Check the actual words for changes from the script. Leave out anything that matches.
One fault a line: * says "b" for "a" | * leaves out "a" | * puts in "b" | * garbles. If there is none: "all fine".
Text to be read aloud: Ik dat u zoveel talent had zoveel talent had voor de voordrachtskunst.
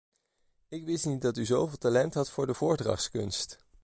* puts in "wist niet"
* leaves out "zoveel talent had"